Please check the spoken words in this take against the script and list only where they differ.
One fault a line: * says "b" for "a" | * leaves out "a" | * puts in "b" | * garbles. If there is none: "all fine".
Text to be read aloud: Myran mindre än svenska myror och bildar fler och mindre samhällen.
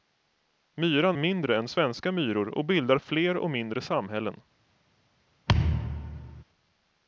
all fine